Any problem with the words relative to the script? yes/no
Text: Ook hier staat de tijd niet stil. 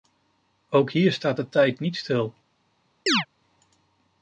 no